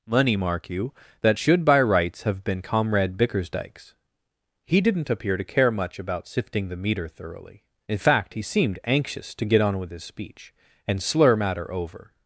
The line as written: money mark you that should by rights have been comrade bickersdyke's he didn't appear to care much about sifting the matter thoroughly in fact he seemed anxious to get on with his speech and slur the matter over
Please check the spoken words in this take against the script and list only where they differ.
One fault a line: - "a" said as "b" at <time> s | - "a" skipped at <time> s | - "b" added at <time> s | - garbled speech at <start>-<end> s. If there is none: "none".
- "matter" said as "meter" at 6.8 s
- "the" skipped at 11.3 s